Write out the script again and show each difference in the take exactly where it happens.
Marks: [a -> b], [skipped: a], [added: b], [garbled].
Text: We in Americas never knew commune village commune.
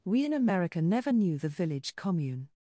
We in [Americas -> America] never knew [commune -> the] village commune.